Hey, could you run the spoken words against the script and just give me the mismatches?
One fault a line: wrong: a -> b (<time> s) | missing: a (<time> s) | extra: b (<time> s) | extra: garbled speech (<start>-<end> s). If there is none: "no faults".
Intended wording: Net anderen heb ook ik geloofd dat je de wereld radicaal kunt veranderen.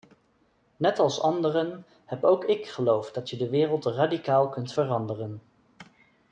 extra: als (1.0 s)